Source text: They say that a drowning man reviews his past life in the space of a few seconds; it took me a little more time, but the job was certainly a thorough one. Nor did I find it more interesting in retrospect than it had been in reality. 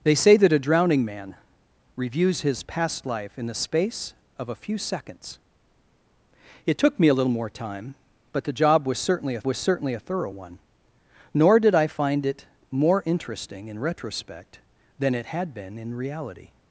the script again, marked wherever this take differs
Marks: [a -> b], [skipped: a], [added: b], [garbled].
They say that a drowning man reviews his past life in the space of a few seconds; it took me a little more time, but the job was certainly a [added: was certainly a] thorough one. Nor did I find it more interesting in retrospect than it had been in reality.